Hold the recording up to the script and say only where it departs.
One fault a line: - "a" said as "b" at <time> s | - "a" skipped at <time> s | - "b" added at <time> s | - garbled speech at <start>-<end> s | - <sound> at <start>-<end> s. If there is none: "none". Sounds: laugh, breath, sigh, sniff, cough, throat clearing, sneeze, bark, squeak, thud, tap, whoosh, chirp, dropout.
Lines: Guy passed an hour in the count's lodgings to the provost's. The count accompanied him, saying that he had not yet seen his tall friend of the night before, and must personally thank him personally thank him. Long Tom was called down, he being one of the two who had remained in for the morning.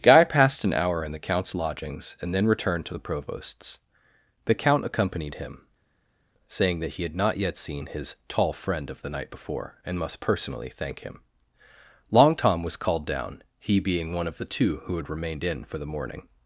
- "and then returned" added at 2.2 s
- "personally thank him" skipped at 11.2 s